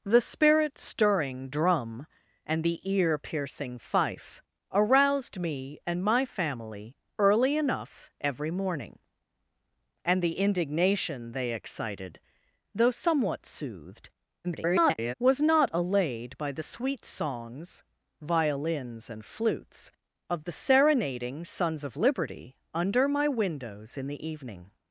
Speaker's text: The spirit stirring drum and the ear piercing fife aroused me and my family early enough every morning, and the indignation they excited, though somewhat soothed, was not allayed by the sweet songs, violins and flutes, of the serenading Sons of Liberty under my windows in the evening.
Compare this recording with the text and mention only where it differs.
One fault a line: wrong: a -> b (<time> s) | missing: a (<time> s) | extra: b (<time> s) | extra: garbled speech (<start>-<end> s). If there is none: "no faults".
extra: garbled speech (14.4-15.1 s)